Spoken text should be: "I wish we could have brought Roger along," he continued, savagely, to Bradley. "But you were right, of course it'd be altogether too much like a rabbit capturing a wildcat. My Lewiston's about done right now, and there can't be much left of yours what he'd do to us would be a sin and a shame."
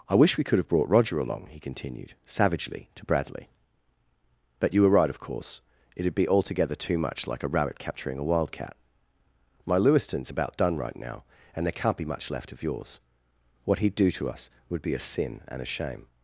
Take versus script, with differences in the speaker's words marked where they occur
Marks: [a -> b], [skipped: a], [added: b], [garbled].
"I wish we could have brought Roger along," he continued, savagely, to Bradley. "But you were right, of course it'd be altogether too much like a rabbit capturing a wildcat. My Lewiston's about done right now, and there can't be much left of yours what he'd do to us would be a sin and a shame."